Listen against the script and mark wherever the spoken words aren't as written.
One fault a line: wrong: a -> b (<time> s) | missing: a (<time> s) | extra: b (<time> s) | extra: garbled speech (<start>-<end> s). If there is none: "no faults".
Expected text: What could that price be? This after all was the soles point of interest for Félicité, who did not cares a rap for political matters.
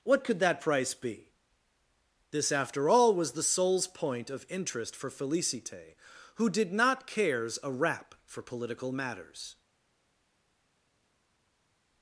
no faults